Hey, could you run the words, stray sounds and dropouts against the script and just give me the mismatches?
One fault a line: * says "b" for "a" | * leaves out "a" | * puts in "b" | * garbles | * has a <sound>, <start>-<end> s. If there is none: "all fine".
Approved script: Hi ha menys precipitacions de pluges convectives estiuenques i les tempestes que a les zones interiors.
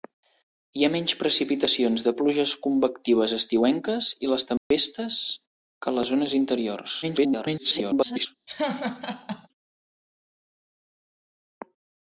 * has a dropout, 4.6-4.7 s
* garbles
* has a laugh, 8.5-9.5 s